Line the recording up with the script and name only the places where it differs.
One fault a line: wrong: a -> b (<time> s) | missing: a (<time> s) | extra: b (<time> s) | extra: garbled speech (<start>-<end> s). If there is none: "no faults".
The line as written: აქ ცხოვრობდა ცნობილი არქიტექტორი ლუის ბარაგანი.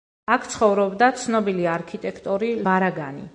missing: ლუის (2.5 s)